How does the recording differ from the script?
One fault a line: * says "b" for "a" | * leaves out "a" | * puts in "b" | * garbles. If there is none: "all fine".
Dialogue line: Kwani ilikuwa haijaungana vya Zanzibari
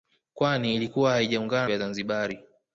all fine